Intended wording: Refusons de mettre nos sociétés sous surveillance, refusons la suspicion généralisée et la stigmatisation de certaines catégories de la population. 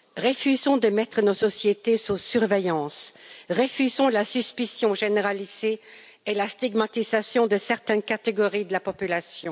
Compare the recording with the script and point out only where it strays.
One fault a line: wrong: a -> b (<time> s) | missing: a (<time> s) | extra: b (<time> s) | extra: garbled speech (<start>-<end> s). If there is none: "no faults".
no faults